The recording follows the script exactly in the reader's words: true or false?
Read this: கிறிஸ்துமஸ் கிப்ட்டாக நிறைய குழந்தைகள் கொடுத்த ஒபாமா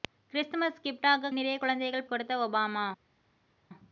true